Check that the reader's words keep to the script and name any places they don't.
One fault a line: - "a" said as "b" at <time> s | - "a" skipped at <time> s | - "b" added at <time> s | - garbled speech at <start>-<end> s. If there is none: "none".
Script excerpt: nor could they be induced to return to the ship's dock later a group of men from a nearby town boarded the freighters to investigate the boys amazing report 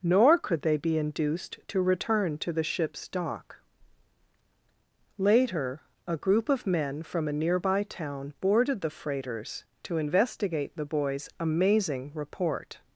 none